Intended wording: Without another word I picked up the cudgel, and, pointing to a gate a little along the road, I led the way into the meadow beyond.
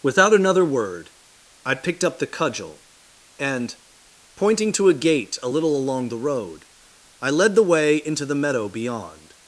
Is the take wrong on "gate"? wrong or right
right